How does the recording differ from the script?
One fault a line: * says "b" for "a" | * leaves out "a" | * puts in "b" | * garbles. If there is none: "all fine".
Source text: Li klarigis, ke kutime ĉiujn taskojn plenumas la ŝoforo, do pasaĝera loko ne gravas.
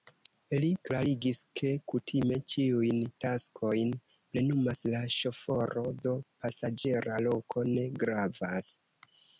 all fine